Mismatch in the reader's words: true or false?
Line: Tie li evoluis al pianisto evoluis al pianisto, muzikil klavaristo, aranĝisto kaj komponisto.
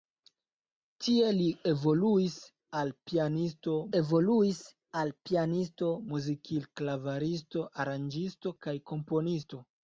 false